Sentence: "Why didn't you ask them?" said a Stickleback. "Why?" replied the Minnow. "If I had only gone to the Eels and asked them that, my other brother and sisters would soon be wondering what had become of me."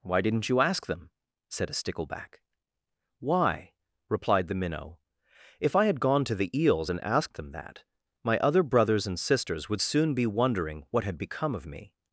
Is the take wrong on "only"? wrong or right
wrong